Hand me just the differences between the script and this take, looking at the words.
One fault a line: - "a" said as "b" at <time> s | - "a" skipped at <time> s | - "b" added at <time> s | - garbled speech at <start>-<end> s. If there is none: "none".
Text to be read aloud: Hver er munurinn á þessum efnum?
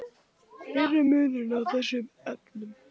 none